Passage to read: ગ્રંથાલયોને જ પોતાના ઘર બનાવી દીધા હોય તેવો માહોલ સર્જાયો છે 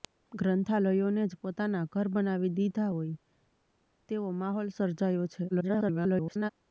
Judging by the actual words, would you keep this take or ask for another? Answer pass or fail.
fail